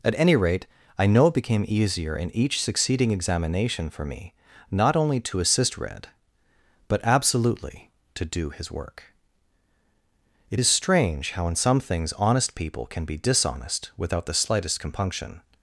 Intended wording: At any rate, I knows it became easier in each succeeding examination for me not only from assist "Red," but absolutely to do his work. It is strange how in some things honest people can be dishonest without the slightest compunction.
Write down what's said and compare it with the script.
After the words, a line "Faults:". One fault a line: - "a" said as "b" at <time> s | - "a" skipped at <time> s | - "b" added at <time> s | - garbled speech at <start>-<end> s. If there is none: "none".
At any rate, I know it became easier in each succeeding examination for me not only to assist "Red," but absolutely to do his work. It is strange how in some things honest people can be dishonest without the slightest compunction.
Faults:
- "knows" said as "know" at 1.1 s
- "from" said as "to" at 5.2 s